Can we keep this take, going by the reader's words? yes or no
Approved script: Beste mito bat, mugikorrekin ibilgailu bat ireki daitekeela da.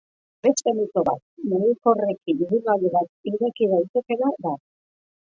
yes